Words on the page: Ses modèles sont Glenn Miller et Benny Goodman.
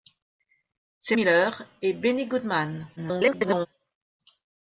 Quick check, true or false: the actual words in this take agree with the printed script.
false